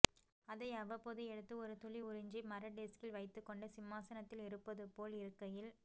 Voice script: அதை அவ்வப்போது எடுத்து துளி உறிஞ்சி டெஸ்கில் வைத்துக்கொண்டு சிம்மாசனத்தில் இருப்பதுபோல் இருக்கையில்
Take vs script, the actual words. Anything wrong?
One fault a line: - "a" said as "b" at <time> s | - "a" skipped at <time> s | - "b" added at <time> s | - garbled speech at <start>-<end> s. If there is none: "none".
- "ஒரு" added at 1.6 s
- "மர" added at 2.5 s